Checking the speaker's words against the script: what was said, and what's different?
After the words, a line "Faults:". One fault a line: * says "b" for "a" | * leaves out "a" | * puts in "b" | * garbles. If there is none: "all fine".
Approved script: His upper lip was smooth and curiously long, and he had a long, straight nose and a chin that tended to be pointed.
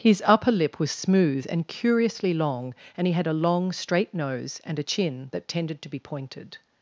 His upper lip was smooth and curiously long, and he had a long, straight nose and a chin that tended to be pointed.
Faults:
all fine